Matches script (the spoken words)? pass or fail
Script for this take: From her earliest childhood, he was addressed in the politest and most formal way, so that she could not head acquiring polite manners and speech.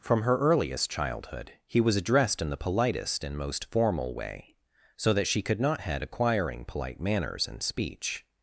pass